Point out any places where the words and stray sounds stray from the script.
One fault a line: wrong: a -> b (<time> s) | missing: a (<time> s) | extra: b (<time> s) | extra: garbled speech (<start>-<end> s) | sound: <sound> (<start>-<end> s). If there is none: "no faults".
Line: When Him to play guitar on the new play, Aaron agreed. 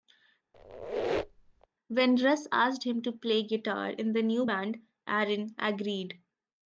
sound: squeak (0.5-1.7 s)
extra: Russ asked (2.2 s)
wrong: on -> in (3.9 s)
wrong: play -> band (4.4 s)